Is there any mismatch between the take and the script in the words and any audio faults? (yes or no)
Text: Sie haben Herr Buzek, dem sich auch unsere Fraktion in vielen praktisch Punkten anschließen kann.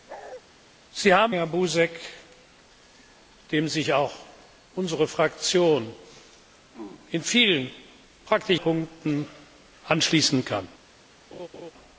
yes